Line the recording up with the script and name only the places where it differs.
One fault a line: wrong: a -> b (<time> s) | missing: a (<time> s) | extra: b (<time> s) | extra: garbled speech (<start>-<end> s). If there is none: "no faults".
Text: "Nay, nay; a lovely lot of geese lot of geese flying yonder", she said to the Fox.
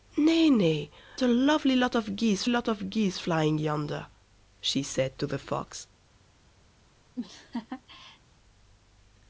no faults